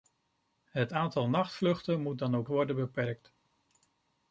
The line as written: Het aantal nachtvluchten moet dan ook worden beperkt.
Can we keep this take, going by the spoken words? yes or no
yes